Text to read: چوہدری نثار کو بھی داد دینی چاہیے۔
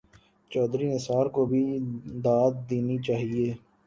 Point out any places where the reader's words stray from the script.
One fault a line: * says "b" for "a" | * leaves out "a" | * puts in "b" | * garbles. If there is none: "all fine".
all fine